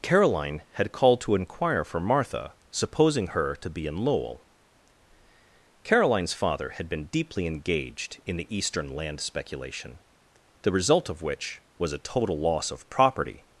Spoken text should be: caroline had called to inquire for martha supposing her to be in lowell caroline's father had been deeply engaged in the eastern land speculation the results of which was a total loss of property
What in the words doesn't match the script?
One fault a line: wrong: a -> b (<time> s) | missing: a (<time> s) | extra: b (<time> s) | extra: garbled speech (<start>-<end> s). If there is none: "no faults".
wrong: results -> result (10.7 s)